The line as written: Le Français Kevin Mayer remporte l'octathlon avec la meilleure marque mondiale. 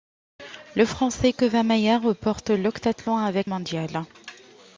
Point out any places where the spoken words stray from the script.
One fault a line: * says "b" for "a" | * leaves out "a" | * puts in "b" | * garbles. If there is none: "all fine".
* leaves out "la meilleure marque"